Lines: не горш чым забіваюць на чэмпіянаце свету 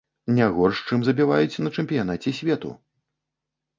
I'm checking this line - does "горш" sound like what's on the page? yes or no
yes